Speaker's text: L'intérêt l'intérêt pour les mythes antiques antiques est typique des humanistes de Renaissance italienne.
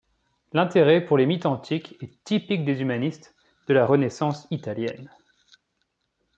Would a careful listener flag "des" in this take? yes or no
no